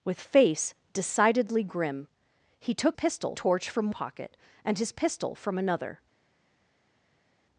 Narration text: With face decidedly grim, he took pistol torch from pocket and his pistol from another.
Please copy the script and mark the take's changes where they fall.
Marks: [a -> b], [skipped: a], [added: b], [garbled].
With face decidedly grim, he took pistol torch from pocket and his pistol from another.